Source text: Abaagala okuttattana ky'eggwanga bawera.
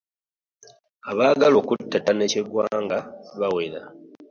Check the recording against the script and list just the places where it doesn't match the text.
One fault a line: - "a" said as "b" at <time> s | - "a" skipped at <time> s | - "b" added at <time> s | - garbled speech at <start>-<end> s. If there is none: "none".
none